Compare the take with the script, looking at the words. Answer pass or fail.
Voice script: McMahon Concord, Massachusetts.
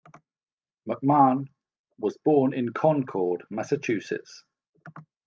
fail